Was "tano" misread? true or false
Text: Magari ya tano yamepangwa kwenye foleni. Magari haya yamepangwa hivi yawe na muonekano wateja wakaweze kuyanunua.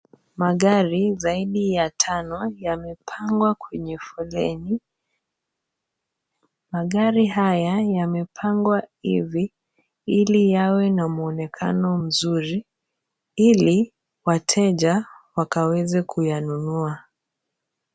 false